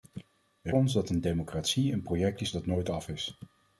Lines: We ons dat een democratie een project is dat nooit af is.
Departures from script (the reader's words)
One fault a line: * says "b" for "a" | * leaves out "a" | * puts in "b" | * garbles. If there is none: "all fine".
all fine